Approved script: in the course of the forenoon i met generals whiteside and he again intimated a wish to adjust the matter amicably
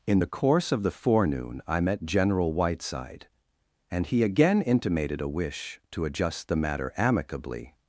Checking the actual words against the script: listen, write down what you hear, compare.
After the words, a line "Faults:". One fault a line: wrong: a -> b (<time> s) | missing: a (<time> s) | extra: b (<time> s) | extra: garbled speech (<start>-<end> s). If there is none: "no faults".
in the course of the forenoon i met general whiteside and he again intimated a wish to adjust the matter amicably
Faults:
wrong: generals -> general (2.0 s)